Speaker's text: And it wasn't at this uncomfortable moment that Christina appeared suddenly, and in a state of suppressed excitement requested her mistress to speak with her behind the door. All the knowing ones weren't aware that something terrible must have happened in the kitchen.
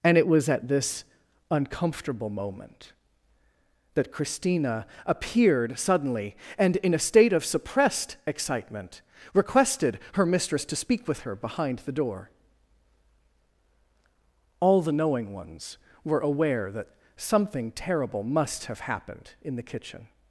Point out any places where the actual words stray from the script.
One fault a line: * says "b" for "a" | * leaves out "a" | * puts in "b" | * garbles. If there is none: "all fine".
* says "was" for "wasn't"
* says "were" for "weren't"